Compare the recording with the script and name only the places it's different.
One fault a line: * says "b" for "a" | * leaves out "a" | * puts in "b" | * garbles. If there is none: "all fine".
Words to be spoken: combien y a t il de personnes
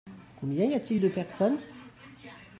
all fine